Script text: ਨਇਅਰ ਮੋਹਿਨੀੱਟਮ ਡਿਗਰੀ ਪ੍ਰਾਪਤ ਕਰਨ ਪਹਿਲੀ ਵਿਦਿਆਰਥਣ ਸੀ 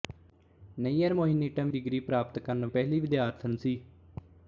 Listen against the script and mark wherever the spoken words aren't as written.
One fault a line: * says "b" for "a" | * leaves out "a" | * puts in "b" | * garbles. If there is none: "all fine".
all fine